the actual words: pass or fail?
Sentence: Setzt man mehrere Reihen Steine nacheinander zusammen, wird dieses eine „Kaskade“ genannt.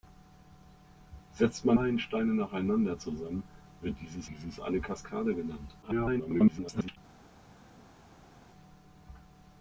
fail